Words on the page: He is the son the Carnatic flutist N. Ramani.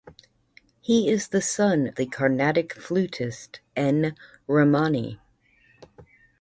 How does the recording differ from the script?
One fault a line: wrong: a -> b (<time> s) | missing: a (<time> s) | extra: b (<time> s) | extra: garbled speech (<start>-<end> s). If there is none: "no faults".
no faults